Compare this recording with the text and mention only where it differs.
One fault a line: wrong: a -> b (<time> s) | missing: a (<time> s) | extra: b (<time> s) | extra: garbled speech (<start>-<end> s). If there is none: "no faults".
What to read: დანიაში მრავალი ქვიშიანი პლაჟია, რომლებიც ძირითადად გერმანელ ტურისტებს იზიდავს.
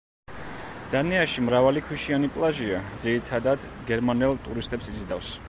missing: რომლებიც (2.8 s)